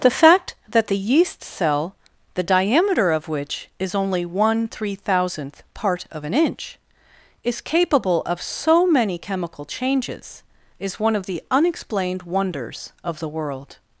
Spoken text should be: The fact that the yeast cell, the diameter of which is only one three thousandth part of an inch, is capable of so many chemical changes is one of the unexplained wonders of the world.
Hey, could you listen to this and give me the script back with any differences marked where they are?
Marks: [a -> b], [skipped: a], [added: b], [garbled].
The fact that the yeast cell, the diameter of which is only one three thousandth part of an inch, is capable of so many chemical changes is one of the unexplained wonders of the world.